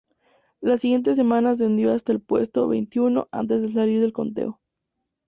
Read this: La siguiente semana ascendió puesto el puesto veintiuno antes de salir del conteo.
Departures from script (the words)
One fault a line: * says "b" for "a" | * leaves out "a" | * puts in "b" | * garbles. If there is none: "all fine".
* says "hasta" for "puesto"